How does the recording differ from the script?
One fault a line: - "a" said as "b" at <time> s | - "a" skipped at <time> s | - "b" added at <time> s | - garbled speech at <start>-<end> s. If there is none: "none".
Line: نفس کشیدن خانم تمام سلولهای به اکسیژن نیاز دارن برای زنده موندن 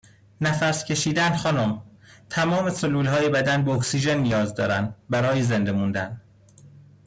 - "بدن" added at 3.3 s